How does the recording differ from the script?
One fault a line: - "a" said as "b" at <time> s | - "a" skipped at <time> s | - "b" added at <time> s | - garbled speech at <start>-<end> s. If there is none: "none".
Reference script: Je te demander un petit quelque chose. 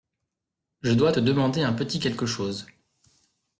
- "dois" added at 0.9 s